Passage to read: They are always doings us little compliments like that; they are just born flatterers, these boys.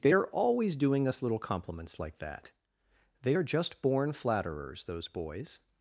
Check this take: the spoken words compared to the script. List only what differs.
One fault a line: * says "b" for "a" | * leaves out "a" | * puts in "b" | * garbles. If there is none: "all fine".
* says "doing" for "doings"
* says "those" for "these"